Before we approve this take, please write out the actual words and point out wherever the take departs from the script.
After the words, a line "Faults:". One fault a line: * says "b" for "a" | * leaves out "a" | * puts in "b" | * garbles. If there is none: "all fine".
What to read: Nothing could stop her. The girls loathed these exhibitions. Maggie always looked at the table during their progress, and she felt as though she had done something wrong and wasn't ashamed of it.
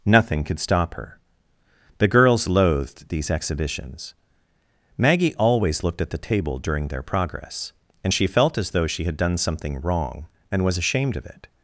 Nothing could stop her. The girls loathed these exhibitions. Maggie always looked at the table during their progress, and she felt as though she had done something wrong and was ashamed of it.
Faults:
* says "was" for "wasn't"